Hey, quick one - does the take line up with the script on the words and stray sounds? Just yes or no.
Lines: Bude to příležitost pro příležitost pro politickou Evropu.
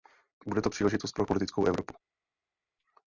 no